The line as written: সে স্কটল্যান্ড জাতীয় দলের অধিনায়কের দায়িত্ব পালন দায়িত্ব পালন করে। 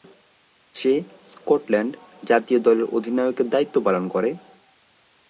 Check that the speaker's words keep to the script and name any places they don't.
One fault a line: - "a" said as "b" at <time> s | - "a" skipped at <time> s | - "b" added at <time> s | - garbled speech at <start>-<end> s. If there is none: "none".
- "দায়িত্ব পালন" skipped at 4.0 s